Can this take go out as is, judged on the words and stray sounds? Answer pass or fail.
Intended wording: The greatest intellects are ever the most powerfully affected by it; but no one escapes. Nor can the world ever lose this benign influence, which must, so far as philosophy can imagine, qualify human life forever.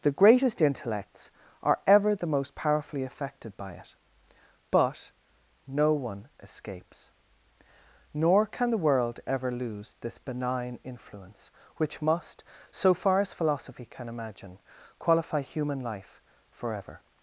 pass